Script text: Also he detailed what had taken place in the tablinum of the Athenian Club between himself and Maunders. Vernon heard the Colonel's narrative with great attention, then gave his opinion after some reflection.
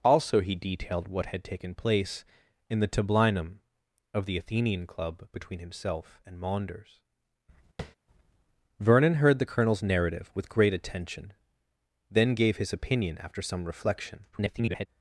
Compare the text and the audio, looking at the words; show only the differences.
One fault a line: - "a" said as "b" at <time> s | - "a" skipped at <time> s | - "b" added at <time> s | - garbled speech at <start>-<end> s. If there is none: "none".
- garbled speech at 14.3-14.9 s